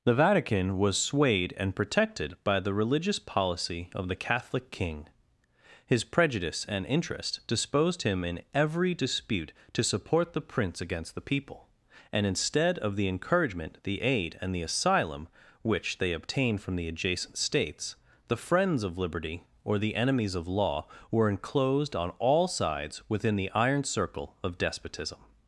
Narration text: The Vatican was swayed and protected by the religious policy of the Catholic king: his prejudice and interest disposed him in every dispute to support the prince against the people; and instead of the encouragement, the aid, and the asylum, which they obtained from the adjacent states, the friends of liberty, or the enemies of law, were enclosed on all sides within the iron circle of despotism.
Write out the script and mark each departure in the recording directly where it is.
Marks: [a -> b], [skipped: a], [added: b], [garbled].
The Vatican was swayed and protected by the religious policy of the Catholic king: his prejudice and interest disposed him in every dispute to support the prince against the people; and instead of the encouragement, the aid, and the asylum, which they obtained from the adjacent states, the friends of liberty, or the enemies of law, were enclosed on all sides within the iron circle of despotism.